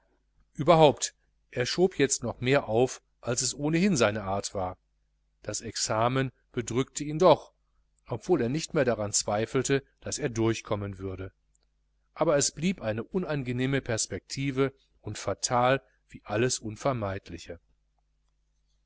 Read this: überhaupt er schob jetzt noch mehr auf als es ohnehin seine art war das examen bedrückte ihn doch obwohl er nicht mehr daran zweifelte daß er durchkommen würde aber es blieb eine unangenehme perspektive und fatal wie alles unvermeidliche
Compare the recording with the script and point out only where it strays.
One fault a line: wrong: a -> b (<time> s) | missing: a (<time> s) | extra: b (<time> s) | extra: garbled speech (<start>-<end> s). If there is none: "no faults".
no faults